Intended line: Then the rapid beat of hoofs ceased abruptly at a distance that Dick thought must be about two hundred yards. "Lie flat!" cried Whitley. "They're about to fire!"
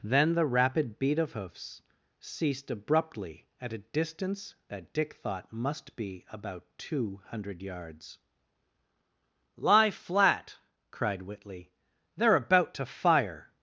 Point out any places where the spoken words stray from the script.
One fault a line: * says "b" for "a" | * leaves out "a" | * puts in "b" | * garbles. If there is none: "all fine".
all fine